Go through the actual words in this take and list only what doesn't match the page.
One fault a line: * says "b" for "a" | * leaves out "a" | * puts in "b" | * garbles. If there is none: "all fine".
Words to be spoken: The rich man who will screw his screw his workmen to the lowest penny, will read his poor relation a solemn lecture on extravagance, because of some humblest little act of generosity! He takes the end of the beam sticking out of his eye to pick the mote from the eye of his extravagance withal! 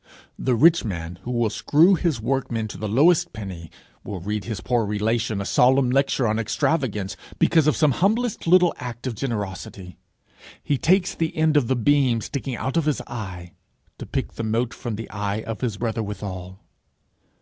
* leaves out "screw his"
* says "brother" for "extravagance"